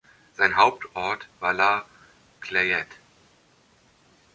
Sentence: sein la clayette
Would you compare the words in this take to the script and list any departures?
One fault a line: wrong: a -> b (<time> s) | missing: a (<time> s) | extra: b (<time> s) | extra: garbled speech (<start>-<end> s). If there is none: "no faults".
extra: hauptort war (0.6 s)